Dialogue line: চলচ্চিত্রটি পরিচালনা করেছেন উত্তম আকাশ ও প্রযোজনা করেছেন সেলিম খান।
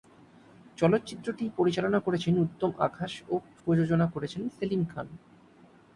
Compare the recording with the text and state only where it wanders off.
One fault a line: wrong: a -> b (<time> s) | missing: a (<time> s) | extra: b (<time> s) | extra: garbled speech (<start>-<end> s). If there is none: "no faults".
no faults